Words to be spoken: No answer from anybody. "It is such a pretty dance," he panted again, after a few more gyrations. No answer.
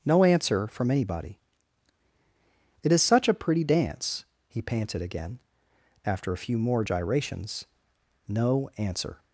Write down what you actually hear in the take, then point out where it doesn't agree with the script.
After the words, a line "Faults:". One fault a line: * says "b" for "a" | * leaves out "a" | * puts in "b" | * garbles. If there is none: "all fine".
No answer from anybody. "It is such a pretty dance," he panted again, after a few more gyrations. No answer.
Faults:
all fine